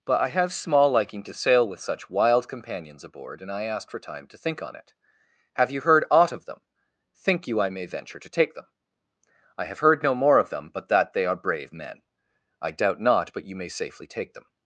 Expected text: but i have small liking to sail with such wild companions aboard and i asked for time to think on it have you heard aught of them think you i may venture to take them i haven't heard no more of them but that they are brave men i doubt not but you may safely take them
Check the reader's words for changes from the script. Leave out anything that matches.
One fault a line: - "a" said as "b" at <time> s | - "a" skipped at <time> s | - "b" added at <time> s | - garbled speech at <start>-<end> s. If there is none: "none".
- "haven't" said as "have" at 9.7 s